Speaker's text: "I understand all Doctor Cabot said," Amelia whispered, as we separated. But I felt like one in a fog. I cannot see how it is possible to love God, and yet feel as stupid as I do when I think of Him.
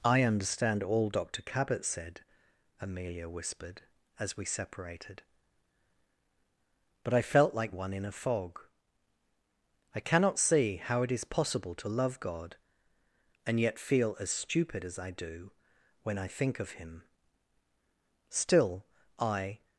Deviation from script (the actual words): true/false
true